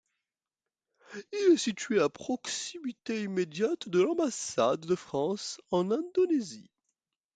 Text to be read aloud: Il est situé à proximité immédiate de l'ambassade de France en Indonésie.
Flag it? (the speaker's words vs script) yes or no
no